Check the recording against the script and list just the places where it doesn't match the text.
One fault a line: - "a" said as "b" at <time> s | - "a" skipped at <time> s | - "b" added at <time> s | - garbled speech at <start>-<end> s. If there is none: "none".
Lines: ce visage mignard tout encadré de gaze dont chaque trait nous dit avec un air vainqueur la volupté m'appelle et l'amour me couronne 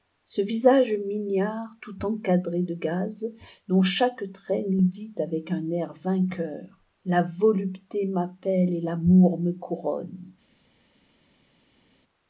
none